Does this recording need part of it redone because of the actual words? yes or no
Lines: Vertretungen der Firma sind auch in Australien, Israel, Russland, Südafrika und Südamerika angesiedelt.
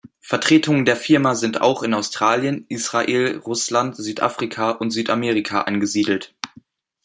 no